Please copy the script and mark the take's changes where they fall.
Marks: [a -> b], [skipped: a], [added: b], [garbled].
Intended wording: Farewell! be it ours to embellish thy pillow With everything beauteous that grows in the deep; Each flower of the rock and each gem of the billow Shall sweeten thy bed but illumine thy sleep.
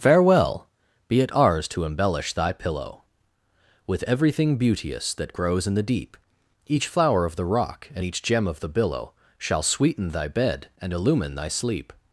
Farewell! be it ours to embellish thy pillow With everything beauteous that grows in the deep; Each flower of the rock and each gem of the billow Shall sweeten thy bed [but -> and] illumine thy sleep.